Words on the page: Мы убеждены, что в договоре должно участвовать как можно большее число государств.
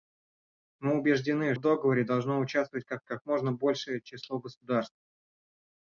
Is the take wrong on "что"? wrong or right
wrong